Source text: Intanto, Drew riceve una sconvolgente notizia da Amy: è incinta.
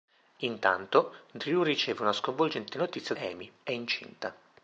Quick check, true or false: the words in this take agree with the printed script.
false